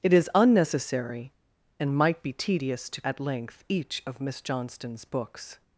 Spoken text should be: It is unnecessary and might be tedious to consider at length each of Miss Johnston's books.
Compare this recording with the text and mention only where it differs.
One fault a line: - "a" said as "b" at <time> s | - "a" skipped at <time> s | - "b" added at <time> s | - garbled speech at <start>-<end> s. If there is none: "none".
- "consider" skipped at 3.0 s